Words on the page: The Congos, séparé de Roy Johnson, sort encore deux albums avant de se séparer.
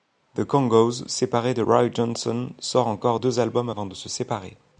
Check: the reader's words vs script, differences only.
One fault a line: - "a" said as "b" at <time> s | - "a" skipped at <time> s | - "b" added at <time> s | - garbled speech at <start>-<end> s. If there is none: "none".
none